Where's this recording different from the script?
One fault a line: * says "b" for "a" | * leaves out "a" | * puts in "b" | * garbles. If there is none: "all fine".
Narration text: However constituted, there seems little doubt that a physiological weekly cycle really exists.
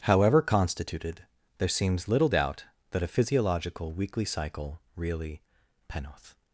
* says "penoth" for "exists"